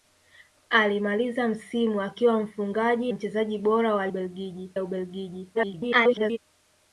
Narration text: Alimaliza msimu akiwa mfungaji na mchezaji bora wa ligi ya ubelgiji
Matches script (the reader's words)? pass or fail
fail